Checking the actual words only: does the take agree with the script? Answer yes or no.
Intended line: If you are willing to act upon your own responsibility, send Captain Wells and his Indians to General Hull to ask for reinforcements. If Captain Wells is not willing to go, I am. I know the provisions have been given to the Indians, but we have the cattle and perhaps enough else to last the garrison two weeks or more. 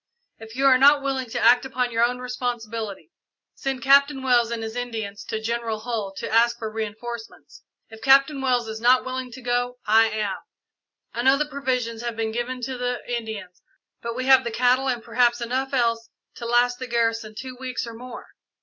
no